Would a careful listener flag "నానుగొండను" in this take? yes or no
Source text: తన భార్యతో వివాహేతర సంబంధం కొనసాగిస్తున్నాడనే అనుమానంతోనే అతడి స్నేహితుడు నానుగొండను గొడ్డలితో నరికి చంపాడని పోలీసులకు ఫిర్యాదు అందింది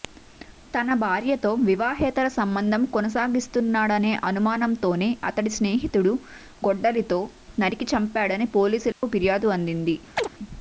yes